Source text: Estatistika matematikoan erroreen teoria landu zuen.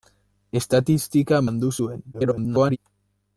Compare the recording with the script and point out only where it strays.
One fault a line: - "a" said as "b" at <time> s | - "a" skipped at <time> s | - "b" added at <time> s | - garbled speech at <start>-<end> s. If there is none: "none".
- "matematikoan erroreen teoria" skipped at 1.4 s
- garbled speech at 2.1-2.8 s